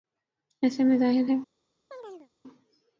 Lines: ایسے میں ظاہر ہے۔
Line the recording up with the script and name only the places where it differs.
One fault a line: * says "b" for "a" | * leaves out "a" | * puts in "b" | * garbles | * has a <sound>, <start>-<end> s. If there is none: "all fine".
* has a chirp, 1.9-2.3 s